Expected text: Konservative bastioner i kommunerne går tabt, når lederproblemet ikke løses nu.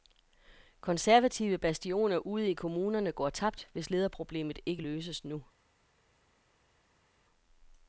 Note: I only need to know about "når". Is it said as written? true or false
false